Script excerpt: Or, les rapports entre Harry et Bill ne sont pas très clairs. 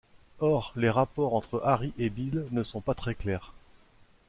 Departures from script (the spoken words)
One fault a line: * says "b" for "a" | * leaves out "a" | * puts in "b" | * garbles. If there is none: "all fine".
all fine